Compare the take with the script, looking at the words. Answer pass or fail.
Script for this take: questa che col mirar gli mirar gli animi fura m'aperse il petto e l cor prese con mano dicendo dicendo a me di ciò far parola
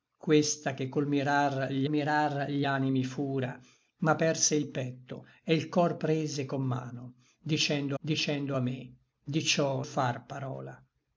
pass